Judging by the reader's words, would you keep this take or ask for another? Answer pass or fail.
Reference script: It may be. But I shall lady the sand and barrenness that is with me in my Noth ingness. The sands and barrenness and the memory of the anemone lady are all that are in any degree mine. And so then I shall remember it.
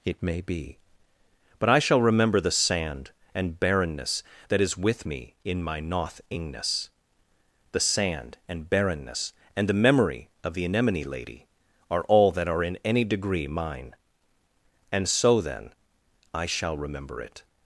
fail